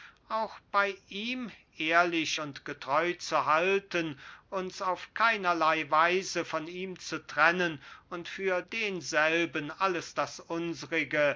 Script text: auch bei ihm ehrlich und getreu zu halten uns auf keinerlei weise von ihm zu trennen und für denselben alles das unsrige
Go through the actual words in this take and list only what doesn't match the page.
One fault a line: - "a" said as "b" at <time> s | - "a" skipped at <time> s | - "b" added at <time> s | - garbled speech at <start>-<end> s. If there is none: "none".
none